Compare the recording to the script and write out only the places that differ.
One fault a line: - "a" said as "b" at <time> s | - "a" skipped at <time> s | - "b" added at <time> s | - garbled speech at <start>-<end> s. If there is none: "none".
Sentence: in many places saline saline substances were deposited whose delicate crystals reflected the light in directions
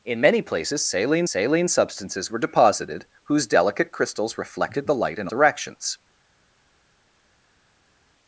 none